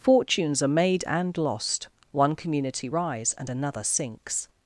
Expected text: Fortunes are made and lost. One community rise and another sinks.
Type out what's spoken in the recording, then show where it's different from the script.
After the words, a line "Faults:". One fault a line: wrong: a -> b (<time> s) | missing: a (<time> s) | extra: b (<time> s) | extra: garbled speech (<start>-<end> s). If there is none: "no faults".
Fortunes are made and lost. One community rise and another sinks.
Faults:
no faults